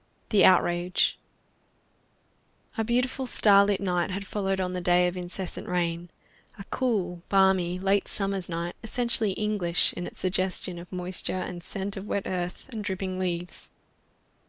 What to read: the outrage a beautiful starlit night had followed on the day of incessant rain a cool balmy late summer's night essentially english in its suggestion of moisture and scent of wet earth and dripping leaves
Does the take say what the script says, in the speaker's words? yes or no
yes